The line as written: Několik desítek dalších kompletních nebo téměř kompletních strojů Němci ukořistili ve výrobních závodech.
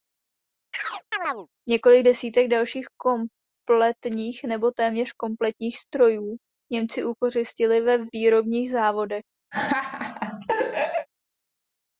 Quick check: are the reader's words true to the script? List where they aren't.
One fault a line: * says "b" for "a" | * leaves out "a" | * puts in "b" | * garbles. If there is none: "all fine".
all fine